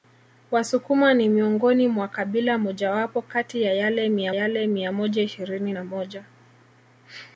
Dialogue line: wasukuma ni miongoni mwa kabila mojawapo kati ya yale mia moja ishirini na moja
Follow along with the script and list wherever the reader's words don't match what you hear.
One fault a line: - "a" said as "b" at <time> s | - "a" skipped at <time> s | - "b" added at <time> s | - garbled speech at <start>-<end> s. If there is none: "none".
- "yale mia" added at 4.3 s